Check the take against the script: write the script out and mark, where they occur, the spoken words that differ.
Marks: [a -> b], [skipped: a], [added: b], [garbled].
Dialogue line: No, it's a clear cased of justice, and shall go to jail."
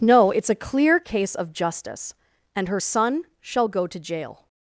No, it's a clear [cased -> case] of justice, and [added: her son] shall go to jail."